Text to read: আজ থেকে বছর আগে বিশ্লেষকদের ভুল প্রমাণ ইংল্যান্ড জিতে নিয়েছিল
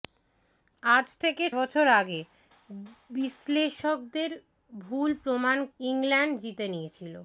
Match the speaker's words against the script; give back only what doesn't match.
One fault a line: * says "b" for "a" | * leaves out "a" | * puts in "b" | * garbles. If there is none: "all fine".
all fine